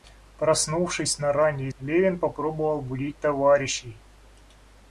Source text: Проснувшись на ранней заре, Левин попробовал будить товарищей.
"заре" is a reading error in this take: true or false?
true